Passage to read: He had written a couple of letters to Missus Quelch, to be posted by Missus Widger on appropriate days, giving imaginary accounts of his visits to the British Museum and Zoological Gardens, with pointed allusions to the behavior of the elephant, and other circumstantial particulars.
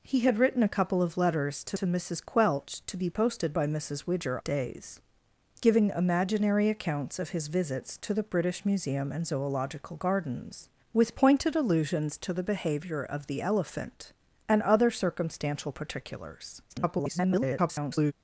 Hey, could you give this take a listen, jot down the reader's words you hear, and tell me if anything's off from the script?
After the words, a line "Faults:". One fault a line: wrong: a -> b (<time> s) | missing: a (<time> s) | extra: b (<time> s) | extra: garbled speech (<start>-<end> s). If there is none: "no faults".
He had written a couple of letters to to Missus Quelch, to be posted by Missus Widger days, giving imaginary accounts of his visits to the British Museum and Zoological Gardens, with pointed allusions to the behavior of the elephant, and other circumstantial particulars. [garbled]
Faults:
extra: to (1.7 s)
missing: on appropriate (4.4 s)
extra: garbled speech (16.7-18.1 s)